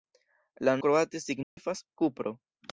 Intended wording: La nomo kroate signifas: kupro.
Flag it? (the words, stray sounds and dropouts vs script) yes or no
yes